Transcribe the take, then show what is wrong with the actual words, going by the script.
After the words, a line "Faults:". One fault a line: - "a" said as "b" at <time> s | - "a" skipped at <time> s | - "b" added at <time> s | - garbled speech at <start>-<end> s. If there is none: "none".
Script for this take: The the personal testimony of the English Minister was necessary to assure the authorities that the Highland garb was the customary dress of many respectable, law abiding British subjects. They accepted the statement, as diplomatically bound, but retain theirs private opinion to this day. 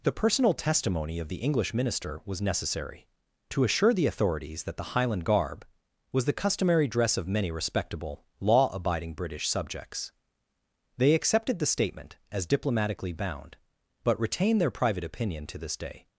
The personal testimony of the English Minister was necessary to assure the authorities that the Highland garb was the customary dress of many respectable, law abiding British subjects. They accepted the statement, as diplomatically bound, but retain their private opinion to this day.
Faults:
- "the" skipped at 0.2 s
- "theirs" said as "their" at 14.6 s